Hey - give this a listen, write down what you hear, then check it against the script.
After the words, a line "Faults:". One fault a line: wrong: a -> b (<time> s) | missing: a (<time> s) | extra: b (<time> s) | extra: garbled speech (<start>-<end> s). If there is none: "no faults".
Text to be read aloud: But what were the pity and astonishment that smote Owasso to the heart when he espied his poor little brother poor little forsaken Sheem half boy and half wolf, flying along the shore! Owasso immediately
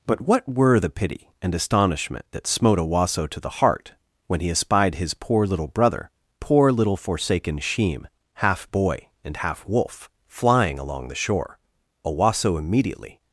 But what were the pity and astonishment that smote Owasso to the heart when he espied his poor little brother poor little forsaken Sheem half boy and half wolf, flying along the shore! Owasso immediately
Faults:
no faults